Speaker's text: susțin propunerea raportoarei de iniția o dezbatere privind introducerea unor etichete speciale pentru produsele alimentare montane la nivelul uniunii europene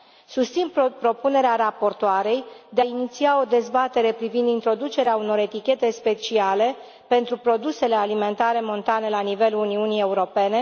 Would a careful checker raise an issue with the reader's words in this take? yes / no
no